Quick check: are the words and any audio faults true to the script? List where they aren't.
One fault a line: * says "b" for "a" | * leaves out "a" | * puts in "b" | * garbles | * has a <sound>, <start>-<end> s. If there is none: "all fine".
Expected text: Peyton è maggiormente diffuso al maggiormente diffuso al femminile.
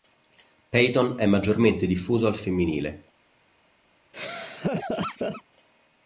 * leaves out "maggiormente diffuso al"
* has a laugh, 4.1-5.4 s